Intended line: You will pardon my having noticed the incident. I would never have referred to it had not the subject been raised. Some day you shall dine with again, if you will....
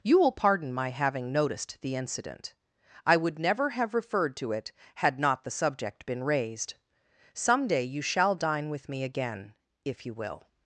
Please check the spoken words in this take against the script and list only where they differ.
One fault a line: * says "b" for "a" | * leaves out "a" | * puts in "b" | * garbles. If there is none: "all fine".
* puts in "me"